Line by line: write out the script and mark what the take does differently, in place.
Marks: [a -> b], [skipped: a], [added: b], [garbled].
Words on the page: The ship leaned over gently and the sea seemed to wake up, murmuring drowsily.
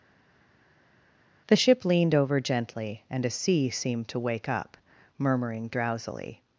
The ship leaned over gently and [the -> a] sea seemed to wake up, murmuring drowsily.